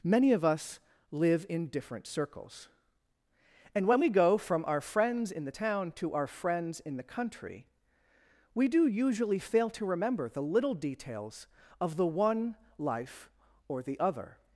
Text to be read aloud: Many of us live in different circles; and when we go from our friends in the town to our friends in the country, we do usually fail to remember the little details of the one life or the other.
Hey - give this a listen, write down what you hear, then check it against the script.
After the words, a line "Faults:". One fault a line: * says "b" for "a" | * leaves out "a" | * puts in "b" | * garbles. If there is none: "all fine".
Many of us live in different circles; and when we go from our friends in the town to our friends in the country, we do usually fail to remember the little details of the one life or the other.
Faults:
all fine